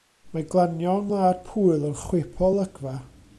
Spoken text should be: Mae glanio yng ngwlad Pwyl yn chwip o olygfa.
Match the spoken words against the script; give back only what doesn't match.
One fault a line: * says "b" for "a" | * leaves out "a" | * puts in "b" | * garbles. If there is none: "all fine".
all fine